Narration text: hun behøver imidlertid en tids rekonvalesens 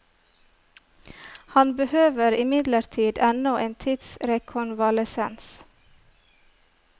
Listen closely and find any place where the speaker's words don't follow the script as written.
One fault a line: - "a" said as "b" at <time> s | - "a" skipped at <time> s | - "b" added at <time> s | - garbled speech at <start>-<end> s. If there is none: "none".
- "hun" said as "han" at 1.6 s
- "ennå" added at 3.3 s